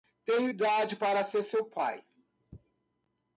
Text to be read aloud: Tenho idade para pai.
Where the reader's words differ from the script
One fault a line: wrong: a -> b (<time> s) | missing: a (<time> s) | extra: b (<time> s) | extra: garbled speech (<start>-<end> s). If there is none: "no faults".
extra: ser seu (1.2 s)